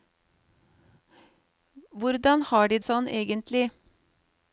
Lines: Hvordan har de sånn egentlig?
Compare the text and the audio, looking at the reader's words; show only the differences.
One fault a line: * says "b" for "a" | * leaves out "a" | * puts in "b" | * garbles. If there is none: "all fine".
all fine